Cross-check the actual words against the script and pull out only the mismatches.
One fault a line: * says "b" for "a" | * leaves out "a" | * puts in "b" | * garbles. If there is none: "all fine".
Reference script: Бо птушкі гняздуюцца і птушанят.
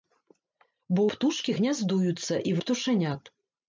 all fine